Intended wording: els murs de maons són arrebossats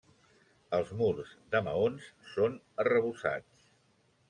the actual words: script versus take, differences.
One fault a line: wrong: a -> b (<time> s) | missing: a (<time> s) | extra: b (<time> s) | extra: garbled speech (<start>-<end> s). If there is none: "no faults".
no faults